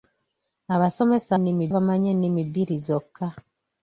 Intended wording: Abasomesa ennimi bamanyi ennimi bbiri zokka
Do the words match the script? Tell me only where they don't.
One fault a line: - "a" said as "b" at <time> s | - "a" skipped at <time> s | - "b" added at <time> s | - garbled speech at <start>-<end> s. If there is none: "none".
none